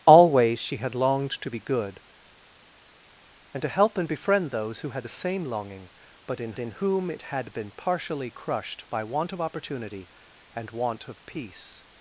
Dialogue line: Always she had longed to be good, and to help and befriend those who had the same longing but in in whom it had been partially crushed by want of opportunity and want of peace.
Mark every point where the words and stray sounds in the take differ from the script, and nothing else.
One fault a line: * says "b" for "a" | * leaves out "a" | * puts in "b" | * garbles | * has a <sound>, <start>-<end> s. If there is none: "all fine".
all fine